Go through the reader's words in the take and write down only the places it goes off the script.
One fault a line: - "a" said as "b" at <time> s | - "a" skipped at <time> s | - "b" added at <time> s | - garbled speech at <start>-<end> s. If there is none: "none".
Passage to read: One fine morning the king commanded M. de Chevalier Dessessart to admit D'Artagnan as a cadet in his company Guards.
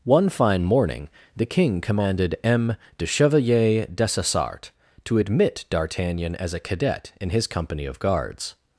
- "of" added at 7.8 s